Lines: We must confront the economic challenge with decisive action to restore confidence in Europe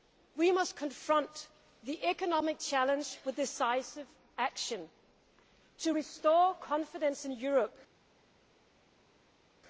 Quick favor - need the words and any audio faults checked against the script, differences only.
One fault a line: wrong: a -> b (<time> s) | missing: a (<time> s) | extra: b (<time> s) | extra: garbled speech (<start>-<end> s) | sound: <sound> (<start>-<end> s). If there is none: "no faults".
no faults